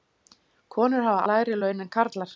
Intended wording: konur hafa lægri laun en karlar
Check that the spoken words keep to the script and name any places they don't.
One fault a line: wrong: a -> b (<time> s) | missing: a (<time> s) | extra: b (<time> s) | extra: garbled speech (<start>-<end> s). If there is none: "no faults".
no faults